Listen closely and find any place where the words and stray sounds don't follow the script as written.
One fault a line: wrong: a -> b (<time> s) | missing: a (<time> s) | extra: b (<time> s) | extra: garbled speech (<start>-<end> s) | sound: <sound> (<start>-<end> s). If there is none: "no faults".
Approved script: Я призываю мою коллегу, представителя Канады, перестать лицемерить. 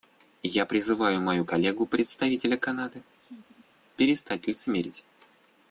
sound: laugh (3.2-3.7 s)